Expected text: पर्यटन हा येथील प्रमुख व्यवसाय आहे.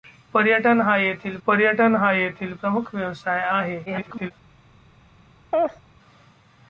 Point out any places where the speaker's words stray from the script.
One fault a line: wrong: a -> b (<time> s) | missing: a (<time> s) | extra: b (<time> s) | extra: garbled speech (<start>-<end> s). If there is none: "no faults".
extra: पर्यटन हा येथील (1.5 s)
extra: garbled speech (3.9-4.3 s)